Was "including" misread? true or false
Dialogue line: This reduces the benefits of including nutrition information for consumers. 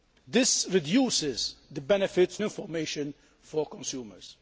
true